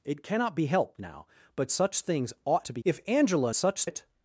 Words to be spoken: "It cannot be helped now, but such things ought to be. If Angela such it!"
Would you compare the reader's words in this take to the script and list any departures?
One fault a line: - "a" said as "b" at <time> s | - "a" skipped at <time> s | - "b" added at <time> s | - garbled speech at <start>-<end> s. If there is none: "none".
none